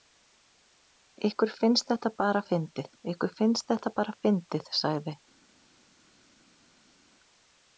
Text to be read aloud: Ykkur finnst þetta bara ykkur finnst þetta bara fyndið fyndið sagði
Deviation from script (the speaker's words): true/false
true